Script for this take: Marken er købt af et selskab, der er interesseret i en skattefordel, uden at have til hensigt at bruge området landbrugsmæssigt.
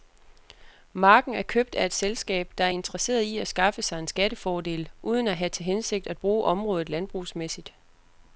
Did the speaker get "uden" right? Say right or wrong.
right